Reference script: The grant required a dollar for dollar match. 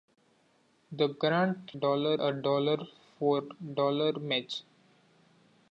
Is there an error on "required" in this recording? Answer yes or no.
yes